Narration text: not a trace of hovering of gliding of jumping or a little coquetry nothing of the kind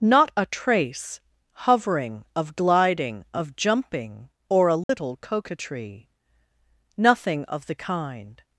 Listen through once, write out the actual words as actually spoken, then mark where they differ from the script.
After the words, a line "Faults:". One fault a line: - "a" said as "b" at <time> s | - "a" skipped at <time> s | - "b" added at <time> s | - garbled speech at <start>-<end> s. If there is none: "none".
not a trace hovering of gliding of jumping or a little coquetry nothing of the kind
Faults:
- "of" skipped at 1.2 s